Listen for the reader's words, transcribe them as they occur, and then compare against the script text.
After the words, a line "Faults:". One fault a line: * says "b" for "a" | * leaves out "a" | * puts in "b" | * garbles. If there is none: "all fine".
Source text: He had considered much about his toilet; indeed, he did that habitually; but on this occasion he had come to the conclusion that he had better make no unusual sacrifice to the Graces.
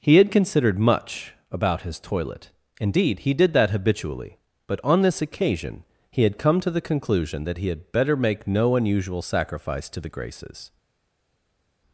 He had considered much about his toilet; indeed, he did that habitually; but on this occasion he had come to the conclusion that he had better make no unusual sacrifice to the Graces.
Faults:
all fine